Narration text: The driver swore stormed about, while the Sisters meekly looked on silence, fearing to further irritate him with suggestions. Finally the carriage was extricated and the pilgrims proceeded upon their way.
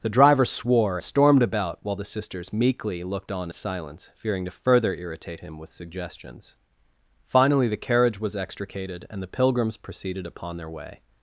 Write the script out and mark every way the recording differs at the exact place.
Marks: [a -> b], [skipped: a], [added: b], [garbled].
The driver swore stormed about, while the Sisters meekly looked on silence, fearing to further irritate him with suggestions. Finally the carriage was extricated and the pilgrims proceeded upon their way.